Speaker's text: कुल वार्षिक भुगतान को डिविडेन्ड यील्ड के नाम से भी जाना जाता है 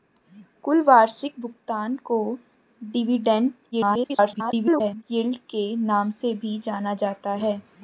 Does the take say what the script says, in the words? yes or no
no